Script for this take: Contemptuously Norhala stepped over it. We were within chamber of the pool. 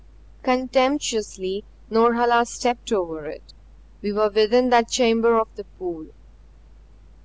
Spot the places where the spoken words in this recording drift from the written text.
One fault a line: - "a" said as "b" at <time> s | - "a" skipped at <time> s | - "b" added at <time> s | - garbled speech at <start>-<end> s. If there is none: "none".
- "that" added at 4.7 s